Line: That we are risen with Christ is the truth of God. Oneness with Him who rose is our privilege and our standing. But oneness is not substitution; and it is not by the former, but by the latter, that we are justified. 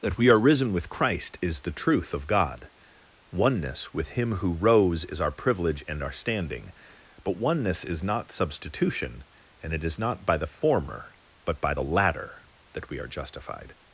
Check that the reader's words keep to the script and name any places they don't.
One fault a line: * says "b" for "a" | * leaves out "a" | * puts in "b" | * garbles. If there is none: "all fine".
all fine